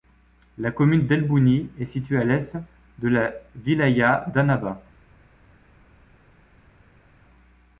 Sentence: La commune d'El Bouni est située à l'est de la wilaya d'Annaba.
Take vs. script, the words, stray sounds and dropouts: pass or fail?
pass